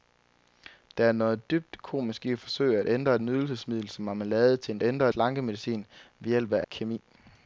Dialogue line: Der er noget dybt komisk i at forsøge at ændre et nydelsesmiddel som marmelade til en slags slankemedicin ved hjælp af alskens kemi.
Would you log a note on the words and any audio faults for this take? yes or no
yes